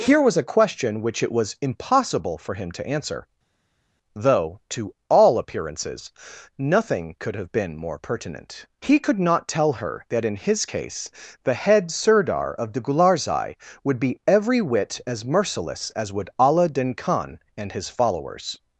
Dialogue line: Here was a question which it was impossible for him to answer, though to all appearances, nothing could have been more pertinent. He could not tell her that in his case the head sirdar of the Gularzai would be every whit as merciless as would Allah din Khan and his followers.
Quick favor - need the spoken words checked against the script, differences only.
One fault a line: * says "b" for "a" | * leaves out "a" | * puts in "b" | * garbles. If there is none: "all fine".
all fine